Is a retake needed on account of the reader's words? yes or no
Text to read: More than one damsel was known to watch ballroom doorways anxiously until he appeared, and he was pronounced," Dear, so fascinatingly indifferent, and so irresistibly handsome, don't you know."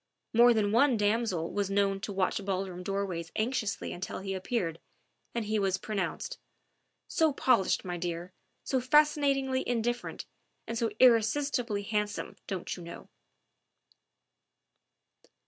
yes